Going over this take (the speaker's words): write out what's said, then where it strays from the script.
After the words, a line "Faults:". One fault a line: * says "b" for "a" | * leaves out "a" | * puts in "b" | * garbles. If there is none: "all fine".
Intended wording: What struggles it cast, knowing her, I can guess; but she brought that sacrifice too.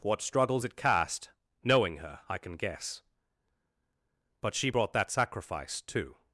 What struggles it cast, knowing her, I can guess; but she brought that sacrifice too.
Faults:
all fine